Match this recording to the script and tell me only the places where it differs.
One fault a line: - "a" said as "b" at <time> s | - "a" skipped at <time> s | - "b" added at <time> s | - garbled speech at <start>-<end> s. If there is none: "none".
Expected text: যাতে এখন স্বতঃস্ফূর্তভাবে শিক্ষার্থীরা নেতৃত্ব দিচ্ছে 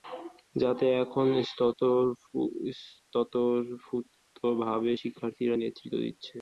none